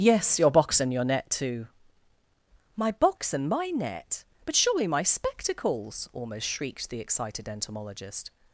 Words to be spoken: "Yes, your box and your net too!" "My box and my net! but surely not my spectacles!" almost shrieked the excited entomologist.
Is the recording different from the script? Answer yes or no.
yes